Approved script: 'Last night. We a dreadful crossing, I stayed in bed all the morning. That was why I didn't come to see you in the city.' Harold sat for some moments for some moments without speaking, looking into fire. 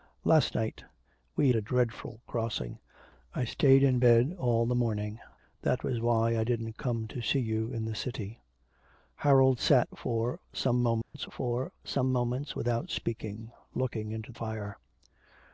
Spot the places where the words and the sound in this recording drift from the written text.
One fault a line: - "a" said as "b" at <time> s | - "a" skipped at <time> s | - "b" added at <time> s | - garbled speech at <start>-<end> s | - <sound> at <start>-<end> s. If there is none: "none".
- dropout at 11.0-11.1 s